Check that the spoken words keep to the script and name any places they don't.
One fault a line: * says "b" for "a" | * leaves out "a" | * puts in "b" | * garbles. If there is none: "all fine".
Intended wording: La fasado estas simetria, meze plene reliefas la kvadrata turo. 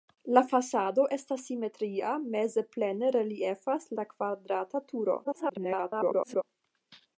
* garbles